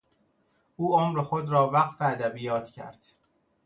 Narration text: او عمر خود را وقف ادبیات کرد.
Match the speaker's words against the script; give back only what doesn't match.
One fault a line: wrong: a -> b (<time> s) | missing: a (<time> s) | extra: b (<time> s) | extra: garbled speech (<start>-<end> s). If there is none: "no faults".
no faults